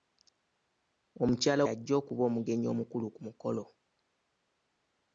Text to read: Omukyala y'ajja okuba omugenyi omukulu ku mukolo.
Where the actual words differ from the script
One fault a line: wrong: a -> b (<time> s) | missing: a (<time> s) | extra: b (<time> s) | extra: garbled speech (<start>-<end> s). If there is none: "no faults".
no faults